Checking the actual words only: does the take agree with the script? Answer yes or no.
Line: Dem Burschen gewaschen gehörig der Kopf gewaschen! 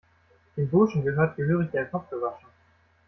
no